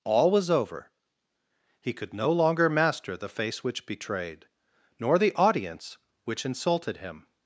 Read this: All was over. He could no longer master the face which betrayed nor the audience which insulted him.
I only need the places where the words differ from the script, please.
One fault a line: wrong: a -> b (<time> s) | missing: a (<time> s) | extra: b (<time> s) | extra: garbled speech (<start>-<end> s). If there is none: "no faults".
no faults